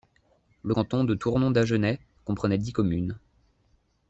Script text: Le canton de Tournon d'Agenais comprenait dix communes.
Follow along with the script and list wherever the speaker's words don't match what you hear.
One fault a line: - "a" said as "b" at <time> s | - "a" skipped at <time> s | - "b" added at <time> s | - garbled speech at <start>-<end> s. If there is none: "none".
none